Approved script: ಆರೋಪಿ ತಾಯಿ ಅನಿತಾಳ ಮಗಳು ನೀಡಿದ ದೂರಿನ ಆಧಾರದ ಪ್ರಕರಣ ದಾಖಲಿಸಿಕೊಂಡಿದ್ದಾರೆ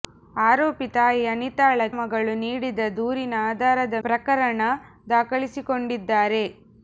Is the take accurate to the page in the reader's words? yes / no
yes